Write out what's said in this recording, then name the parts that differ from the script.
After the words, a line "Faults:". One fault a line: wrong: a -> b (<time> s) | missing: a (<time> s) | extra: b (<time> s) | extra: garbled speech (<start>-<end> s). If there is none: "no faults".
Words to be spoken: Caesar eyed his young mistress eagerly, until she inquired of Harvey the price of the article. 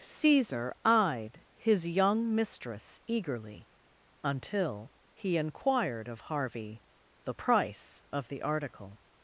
Caesar eyed his young mistress eagerly, until he inquired of Harvey the price of the article.
Faults:
wrong: she -> he (5.1 s)